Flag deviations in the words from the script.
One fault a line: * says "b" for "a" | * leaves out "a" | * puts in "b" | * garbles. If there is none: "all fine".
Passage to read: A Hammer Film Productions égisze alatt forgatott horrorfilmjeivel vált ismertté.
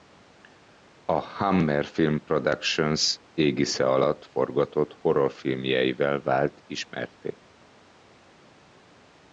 all fine